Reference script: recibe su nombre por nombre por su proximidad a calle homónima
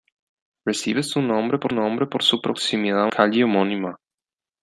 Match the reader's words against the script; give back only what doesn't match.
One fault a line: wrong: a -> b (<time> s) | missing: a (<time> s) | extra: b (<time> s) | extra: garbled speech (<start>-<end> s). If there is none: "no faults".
no faults